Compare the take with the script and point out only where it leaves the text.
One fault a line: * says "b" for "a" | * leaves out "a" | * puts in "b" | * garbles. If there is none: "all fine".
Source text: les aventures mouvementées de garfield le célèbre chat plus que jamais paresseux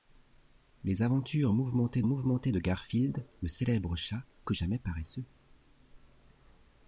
* puts in "mouvementées"
* leaves out "plus"